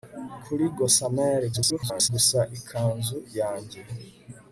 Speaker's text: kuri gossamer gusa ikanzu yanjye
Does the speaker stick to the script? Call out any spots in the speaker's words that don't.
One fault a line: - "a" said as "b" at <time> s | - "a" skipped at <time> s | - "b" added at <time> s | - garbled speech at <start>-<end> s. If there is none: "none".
- garbled speech at 1.5-2.1 s